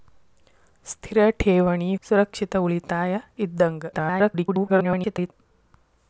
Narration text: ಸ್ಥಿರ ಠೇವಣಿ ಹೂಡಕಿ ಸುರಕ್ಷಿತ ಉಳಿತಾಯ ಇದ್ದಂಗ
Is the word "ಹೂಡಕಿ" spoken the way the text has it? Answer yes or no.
no